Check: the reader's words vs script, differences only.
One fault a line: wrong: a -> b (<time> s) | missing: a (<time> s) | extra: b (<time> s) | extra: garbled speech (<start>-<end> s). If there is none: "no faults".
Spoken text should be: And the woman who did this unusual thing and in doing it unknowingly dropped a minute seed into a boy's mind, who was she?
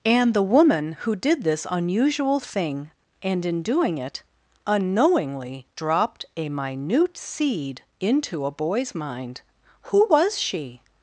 no faults